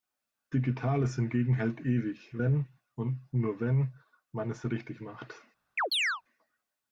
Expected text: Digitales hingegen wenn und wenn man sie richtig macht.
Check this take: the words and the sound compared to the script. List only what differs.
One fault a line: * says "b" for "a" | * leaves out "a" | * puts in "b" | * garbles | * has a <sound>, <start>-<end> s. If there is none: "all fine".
* puts in "hält ewig"
* puts in "nur"
* says "es" for "sie"
* has a chirp, 5.8-6.2 s